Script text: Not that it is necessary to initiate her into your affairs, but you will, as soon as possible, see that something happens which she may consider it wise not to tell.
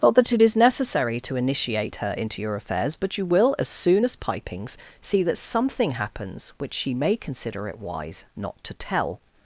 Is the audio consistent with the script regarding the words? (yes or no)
no